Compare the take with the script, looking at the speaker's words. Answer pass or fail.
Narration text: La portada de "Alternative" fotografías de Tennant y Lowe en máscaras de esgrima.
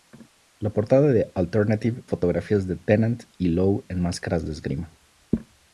pass